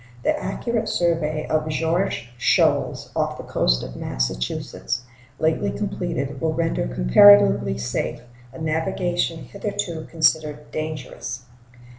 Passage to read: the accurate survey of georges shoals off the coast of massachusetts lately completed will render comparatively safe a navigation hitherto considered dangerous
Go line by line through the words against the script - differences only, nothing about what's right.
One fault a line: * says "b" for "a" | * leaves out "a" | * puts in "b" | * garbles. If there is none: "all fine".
all fine